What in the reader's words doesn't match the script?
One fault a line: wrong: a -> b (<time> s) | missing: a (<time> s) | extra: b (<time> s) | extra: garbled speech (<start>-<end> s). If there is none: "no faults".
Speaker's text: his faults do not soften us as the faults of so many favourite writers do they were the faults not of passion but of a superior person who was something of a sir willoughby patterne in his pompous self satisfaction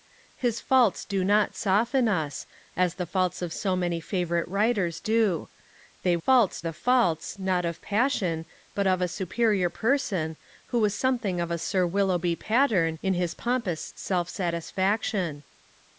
wrong: were -> faults (6.2 s)